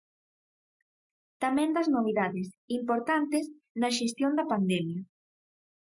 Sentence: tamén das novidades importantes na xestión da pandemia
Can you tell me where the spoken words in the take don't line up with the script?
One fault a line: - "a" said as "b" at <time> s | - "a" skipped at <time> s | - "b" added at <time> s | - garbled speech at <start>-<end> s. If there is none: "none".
none